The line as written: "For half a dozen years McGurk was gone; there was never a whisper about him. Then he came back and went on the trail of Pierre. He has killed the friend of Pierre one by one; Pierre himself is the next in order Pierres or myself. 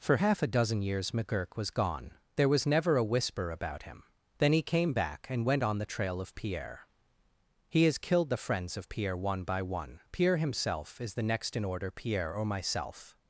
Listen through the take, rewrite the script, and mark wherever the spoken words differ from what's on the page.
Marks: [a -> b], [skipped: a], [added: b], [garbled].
"For half a dozen years McGurk was gone; there was never a whisper about him. Then he came back and went on the trail of Pierre. He has killed the [friend -> friends] of Pierre one by one; Pierre himself is the next in order [Pierres -> Pierre] or myself.